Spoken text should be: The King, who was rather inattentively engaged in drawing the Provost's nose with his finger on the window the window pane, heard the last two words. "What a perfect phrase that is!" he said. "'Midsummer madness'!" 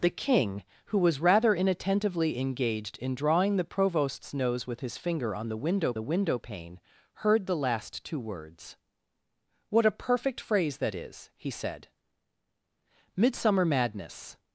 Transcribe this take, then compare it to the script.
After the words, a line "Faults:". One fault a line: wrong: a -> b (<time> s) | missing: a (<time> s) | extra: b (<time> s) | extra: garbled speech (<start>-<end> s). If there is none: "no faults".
The King, who was rather inattentively engaged in drawing the Provost's nose with his finger on the window the window pane, heard the last two words. "What a perfect phrase that is!" he said. "'Midsummer madness'!"
Faults:
no faults